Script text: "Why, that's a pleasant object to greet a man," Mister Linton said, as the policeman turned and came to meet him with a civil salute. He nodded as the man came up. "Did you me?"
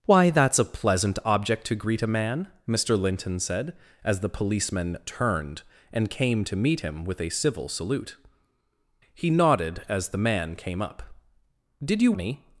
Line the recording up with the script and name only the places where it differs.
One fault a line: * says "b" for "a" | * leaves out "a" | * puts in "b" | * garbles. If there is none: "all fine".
all fine